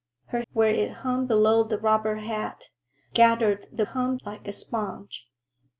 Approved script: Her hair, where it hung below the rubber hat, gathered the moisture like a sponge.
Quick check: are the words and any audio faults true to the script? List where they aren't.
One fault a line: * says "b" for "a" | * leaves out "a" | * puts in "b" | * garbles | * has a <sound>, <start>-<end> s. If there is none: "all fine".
* leaves out "hair"
* says "hung" for "moisture"